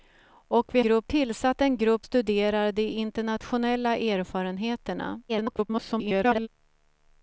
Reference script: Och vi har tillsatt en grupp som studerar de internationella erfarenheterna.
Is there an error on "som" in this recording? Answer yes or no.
yes